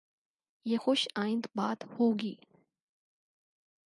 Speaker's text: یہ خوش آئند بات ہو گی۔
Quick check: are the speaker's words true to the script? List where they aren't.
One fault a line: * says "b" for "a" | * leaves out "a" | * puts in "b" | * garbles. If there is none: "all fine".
all fine